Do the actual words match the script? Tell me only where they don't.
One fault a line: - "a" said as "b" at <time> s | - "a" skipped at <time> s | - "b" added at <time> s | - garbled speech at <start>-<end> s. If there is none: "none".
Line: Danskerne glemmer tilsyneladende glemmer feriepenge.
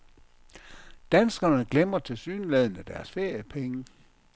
- "glemmer" said as "deres" at 2.8 s